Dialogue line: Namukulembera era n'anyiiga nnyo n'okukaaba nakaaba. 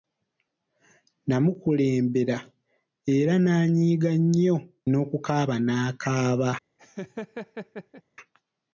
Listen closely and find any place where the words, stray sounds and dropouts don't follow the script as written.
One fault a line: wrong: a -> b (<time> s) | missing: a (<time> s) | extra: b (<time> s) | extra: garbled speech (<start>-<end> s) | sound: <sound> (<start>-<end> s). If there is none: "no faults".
sound: laugh (6.8-8.0 s)